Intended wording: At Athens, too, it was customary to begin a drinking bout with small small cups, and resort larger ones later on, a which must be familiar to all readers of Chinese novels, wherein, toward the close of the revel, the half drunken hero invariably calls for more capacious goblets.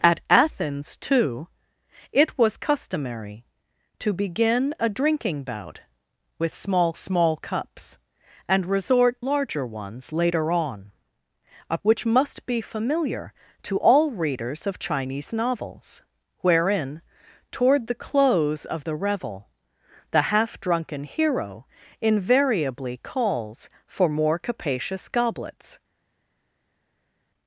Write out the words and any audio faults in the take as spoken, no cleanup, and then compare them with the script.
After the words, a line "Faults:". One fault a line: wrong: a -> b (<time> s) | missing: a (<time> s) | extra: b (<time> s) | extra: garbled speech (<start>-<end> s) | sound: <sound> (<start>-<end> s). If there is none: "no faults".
At Athens, too, it was customary to begin a drinking bout with small small cups, and resort larger ones later on, a which must be familiar to all readers of Chinese novels, wherein, toward the close of the revel, the half drunken hero invariably calls for more capacious goblets.
Faults:
no faults